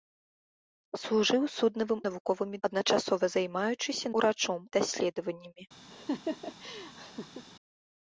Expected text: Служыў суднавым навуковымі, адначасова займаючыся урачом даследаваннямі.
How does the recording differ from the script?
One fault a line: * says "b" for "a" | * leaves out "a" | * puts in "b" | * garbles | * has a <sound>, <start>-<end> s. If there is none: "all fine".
* has a laugh, 5.9-7.5 s